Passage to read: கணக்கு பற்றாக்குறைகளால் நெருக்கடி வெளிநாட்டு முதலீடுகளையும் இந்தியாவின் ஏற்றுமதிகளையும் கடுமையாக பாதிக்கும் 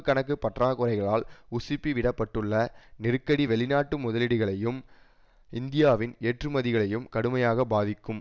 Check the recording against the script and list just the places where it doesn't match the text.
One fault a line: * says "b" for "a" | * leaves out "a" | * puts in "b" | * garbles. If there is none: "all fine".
* puts in "உசுப்பிவிடப்பட்டுள்ள"